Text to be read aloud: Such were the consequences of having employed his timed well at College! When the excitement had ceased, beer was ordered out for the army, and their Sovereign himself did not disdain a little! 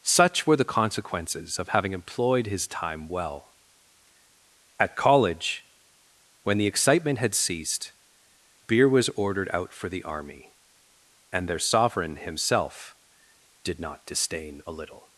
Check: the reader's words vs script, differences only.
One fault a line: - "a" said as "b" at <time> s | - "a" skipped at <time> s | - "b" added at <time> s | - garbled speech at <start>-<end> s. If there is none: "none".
- "timed" said as "time" at 2.7 s